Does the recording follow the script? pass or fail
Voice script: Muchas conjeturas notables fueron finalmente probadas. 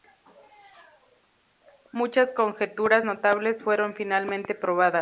pass